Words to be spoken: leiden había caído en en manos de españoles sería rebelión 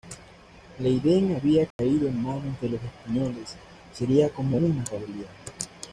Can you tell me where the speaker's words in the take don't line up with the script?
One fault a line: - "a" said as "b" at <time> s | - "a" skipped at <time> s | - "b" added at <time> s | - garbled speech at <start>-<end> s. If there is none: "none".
- "en" skipped at 2.2 s
- "los" added at 2.7 s
- "como una" added at 4.3 s